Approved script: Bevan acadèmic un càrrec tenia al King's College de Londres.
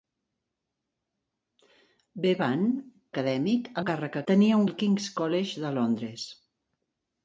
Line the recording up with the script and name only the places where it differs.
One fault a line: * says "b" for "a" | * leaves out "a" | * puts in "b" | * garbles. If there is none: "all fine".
all fine